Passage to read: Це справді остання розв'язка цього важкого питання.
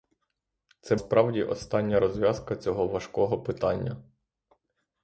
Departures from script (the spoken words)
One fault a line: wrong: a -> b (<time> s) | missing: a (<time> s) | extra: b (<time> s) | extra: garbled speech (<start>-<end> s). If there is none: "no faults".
no faults